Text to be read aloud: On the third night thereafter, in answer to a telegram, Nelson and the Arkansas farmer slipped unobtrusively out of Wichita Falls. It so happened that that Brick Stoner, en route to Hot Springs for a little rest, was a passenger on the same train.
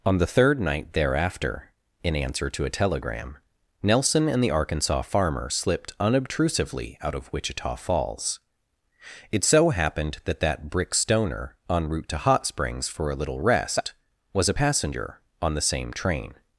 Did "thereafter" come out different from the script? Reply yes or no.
no